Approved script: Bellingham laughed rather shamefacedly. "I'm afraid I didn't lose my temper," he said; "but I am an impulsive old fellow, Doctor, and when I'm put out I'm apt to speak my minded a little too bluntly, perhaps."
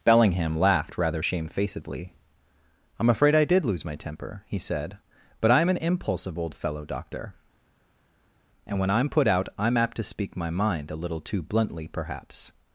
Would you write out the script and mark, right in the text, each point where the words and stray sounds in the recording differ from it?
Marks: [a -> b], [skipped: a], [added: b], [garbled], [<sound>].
Bellingham laughed rather shamefacedly. "I'm afraid I [didn't -> did] lose my temper," he said; "but I am an impulsive old fellow, Doctor, and when I'm put out I'm apt to speak my [minded -> mind] a little too bluntly, perhaps."